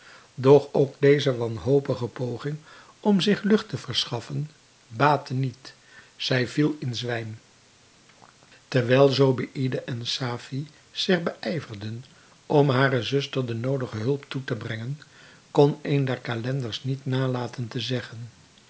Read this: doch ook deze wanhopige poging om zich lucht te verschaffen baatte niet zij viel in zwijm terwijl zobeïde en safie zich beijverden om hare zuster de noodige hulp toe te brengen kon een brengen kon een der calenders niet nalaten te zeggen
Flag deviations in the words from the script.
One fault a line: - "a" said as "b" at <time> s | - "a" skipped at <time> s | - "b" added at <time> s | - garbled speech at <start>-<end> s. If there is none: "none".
- "brengen kon een" skipped at 16.0 s